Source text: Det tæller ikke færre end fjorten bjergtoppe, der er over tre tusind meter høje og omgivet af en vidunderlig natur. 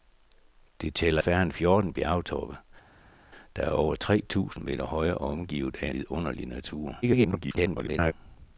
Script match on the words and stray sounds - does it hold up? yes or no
no